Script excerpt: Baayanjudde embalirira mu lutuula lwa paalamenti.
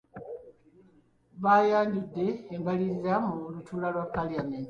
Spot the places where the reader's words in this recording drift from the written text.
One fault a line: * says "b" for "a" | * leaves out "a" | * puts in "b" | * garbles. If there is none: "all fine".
all fine